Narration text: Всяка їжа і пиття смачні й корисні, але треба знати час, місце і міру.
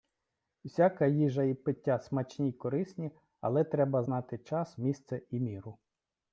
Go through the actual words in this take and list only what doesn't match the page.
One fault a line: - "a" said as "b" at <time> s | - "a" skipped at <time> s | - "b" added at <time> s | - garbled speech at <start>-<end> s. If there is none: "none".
none